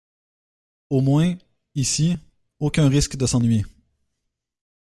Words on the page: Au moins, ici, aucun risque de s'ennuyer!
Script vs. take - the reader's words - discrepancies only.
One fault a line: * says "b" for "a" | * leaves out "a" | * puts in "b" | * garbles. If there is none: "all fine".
all fine